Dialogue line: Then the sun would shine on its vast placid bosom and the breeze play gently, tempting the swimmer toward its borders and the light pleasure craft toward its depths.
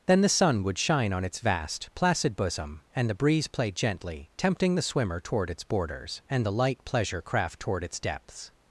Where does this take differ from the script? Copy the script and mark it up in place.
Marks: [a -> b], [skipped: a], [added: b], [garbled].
Then the sun would shine on its vast placid bosom and the breeze play gently, tempting the swimmer toward its borders and the light pleasure craft toward its depths.